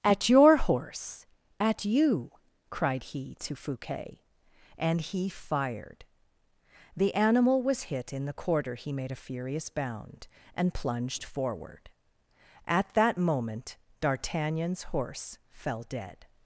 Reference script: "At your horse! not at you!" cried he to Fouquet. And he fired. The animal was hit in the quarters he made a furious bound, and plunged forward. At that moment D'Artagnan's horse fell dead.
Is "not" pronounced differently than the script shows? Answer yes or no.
yes